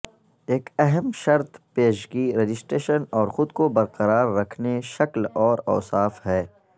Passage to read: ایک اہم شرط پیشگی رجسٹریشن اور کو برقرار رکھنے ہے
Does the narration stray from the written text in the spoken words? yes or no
yes